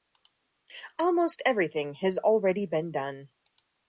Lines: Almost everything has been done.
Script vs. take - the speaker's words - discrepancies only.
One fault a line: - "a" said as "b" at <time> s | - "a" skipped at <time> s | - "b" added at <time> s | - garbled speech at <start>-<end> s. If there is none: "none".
- "already" added at 2.2 s